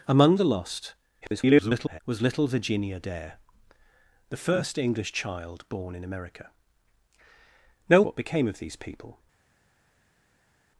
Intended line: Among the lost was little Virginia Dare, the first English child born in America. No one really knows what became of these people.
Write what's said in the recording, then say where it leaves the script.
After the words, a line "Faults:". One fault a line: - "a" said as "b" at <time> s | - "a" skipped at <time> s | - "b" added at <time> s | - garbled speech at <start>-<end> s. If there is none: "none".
Among the lost [garbled] was little Virginia Dare, the first English child born in America. No what became of these people.
Faults:
- garbled speech at 1.2-2.0 s
- "one really knows" skipped at 8.0 s